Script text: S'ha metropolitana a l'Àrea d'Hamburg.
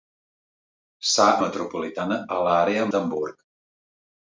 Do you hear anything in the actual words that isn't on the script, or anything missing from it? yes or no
no